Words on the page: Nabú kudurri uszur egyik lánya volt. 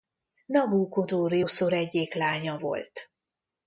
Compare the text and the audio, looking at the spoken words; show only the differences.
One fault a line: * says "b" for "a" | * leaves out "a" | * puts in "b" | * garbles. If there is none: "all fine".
all fine